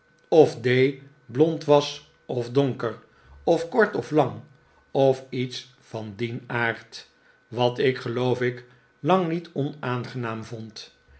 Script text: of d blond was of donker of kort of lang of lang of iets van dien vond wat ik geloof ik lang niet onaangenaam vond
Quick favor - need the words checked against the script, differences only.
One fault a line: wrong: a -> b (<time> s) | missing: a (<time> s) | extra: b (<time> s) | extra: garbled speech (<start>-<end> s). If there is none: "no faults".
missing: lang of (5.2 s)
wrong: vond -> aard (6.5 s)